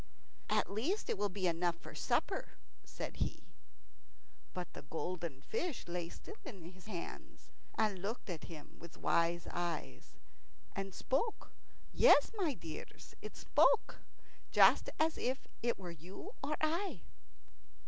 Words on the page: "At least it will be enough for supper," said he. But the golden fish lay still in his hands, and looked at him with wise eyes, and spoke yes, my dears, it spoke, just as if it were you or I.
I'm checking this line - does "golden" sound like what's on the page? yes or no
yes